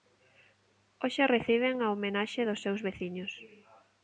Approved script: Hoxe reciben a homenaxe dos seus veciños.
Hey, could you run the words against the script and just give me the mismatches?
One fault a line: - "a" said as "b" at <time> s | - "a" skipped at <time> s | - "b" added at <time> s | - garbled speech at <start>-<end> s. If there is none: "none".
none